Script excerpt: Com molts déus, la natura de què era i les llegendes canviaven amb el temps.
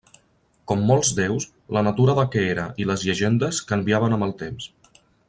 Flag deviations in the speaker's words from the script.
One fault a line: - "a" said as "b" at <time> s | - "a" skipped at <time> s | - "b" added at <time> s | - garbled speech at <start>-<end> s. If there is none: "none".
none